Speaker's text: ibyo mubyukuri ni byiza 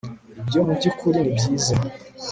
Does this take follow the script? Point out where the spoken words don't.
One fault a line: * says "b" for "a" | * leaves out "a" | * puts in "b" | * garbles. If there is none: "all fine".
all fine